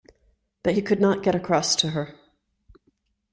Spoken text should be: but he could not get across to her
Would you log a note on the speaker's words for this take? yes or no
no